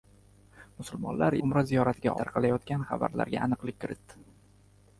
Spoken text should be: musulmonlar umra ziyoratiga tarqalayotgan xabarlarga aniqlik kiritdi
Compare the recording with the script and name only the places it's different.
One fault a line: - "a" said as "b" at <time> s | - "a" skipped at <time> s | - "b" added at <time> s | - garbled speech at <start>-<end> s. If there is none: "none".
none